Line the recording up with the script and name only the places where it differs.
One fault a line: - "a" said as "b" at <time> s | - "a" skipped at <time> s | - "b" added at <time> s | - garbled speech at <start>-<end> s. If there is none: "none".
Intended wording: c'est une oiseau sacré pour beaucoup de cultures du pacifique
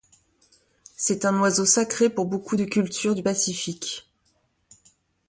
- "une" said as "un" at 1.2 s